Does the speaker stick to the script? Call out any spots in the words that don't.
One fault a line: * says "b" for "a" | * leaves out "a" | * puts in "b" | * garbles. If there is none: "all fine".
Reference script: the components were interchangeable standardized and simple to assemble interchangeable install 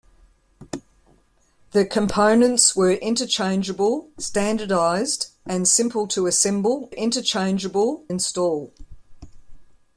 all fine